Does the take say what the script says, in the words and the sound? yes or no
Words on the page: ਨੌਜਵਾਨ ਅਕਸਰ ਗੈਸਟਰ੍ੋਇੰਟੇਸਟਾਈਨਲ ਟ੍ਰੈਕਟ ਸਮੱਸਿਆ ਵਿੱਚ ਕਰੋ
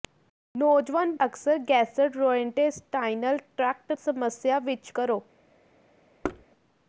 no